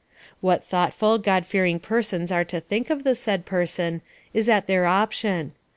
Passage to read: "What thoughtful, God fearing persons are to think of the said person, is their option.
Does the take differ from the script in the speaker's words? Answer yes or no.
yes